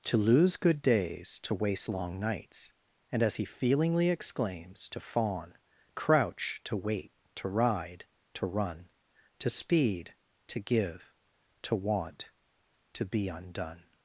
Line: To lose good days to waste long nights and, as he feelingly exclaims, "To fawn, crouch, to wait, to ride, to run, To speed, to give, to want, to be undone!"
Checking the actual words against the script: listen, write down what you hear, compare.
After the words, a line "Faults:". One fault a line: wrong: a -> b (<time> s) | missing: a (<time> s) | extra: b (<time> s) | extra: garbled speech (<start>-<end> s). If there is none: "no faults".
To lose good days to waste long nights and, as he feelingly exclaims, "To fawn, crouch, to wait, to ride, to run, To speed, to give, to want, to be undone!"
Faults:
no faults